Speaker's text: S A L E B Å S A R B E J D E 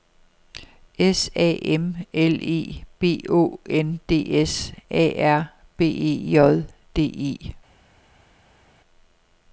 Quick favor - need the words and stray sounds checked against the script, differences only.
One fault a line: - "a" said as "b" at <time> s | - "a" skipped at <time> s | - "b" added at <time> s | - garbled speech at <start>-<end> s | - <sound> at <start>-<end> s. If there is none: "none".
- "M" added at 1.6 s
- "N D" added at 3.7 s